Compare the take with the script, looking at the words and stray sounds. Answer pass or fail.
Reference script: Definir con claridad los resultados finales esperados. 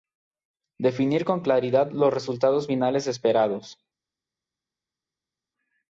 pass